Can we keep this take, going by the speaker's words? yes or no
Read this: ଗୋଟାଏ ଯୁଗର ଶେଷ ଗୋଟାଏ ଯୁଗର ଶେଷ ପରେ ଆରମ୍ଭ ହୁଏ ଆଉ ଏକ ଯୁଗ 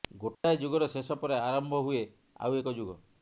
no